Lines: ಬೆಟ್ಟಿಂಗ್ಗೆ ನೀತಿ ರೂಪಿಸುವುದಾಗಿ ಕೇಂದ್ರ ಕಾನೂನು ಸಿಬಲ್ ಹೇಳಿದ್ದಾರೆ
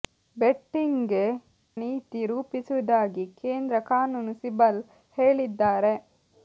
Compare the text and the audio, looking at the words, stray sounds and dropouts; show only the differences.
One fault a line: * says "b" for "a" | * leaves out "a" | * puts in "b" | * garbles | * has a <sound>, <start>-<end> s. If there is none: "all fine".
all fine